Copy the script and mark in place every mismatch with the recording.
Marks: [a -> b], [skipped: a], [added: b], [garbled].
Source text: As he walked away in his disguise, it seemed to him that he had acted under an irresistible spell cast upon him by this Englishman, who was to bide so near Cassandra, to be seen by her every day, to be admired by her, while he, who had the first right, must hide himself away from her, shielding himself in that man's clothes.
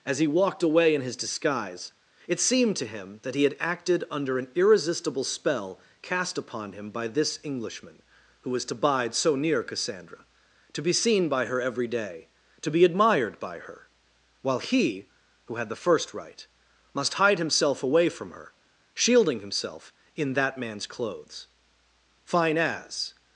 As he walked away in his disguise, it seemed to him that he had acted under an irresistible spell cast upon him by this Englishman, who was to bide so near Cassandra, to be seen by her every day, to be admired by her, while he, who had the first right, must hide himself away from her, shielding himself in that man's clothes. [added: Fine as]